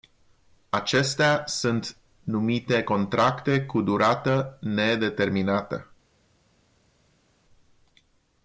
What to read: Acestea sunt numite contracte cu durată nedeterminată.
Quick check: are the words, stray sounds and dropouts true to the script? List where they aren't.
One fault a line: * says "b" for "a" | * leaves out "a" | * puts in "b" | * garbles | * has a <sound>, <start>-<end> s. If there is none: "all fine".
all fine